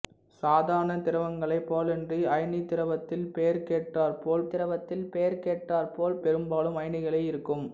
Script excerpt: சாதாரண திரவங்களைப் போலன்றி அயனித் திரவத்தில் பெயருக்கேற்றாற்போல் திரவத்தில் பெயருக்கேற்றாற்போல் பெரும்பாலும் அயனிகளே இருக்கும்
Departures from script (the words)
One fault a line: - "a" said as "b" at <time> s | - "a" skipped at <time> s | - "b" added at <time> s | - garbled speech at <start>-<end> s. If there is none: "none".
none